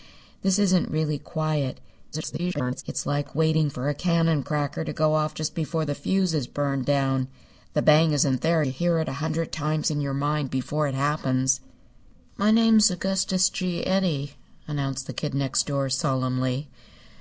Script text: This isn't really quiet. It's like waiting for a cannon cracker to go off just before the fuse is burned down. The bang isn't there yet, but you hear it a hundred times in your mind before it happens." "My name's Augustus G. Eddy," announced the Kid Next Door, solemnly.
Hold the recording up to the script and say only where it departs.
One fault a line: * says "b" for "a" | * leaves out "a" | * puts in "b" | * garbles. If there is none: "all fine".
* garbles
* leaves out "yet but"